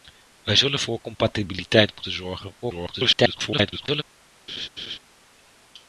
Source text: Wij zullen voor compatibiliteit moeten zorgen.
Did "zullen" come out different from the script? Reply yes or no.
no